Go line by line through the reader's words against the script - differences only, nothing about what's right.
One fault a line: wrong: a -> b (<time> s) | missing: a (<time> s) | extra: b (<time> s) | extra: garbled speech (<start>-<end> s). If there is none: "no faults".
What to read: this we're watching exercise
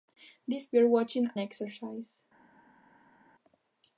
no faults